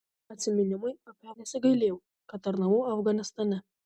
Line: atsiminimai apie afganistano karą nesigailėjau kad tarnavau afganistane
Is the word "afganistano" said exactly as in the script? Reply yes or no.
no